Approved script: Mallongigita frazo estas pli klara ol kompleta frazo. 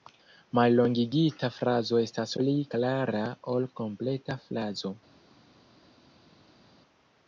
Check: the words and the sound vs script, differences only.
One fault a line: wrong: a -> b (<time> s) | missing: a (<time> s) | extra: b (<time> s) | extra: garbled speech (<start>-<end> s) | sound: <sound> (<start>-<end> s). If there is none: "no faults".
no faults